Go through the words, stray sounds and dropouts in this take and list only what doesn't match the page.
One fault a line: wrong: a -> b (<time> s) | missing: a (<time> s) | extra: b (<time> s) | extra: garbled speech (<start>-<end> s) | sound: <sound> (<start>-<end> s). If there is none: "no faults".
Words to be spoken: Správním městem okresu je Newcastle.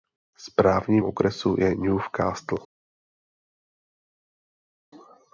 missing: městem (1.0 s)